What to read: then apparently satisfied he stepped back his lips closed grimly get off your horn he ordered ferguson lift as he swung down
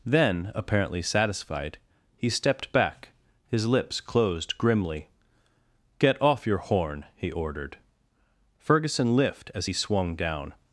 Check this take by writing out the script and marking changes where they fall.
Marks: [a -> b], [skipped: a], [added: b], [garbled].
then apparently satisfied he stepped back his lips closed grimly get off your horn he ordered ferguson lift as he swung down